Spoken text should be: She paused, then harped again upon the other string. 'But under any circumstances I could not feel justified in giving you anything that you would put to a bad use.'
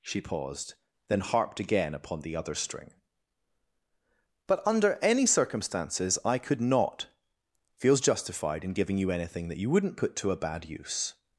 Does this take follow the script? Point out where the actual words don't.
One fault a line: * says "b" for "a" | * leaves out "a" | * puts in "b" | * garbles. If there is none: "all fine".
* says "feels" for "feel"
* says "wouldn't" for "would"